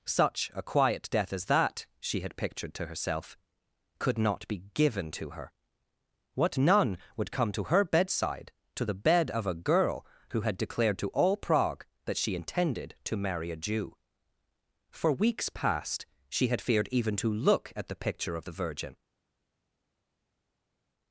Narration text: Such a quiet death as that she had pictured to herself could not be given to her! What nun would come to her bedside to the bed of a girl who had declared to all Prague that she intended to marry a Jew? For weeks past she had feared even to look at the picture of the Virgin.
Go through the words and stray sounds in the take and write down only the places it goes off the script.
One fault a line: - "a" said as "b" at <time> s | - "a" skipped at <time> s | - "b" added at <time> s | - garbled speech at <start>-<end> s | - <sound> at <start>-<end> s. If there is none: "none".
none